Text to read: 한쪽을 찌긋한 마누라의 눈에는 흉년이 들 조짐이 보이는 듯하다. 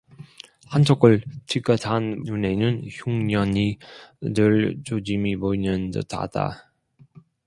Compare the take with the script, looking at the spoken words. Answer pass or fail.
fail